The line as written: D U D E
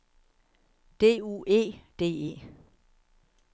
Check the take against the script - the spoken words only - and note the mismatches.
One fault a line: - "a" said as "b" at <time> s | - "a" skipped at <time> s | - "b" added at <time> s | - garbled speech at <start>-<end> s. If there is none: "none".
- "E" added at 1.5 s